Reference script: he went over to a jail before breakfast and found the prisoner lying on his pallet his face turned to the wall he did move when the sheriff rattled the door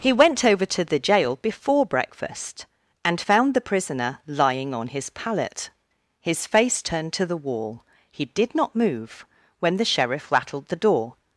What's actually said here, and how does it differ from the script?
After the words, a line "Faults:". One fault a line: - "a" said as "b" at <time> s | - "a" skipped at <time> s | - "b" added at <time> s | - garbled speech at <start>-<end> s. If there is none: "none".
he went over to the jail before breakfast and found the prisoner lying on his pallet his face turned to the wall he did not move when the sheriff rattled the door
Faults:
- "a" said as "the" at 0.8 s
- "not" added at 8.5 s